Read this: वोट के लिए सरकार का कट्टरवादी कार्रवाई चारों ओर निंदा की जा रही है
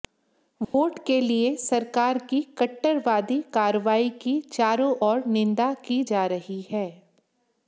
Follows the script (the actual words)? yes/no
no